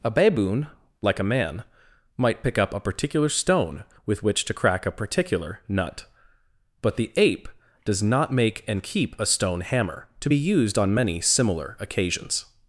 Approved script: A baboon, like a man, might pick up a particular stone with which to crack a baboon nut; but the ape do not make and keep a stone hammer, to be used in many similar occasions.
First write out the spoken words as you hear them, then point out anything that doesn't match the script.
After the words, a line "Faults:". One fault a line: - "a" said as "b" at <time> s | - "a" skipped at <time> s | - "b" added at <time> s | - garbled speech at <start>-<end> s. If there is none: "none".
A baboon, like a man, might pick up a particular stone with which to crack a particular nut; but the ape does not make and keep a stone hammer, to be used on many similar occasions.
Faults:
- "baboon" said as "particular" at 4.9 s
- "do" said as "does" at 7.9 s
- "in" said as "on" at 10.8 s